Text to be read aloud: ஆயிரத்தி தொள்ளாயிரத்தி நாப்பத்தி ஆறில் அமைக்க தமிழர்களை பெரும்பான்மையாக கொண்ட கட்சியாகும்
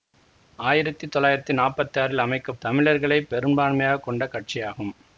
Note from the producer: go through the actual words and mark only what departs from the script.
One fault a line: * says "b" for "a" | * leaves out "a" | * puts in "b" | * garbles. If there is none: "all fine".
all fine